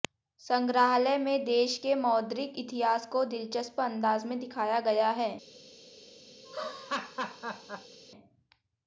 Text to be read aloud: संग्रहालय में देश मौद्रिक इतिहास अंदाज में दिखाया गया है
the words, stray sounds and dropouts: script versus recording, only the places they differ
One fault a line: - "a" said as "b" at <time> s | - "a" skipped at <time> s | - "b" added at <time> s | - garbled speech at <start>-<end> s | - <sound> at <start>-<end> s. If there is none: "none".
- "के" added at 1.8 s
- "को दिलचस्प" added at 3.1 s
- laugh at 6.4-8.0 s